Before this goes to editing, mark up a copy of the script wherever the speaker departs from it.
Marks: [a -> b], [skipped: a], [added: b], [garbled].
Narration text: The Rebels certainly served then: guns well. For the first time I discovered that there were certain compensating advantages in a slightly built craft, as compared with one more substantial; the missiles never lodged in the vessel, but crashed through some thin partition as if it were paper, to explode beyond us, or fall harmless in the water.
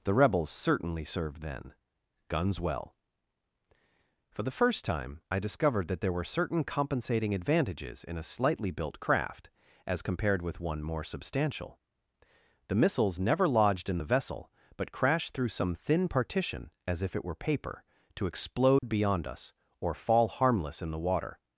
The Rebels certainly served then: guns well. For the first time I discovered that there were certain compensating advantages in a slightly built craft, as compared with one more substantial; the missiles never lodged in the vessel, but crashed through some thin partition as if it were paper, to explode beyond us, or fall harmless in the water.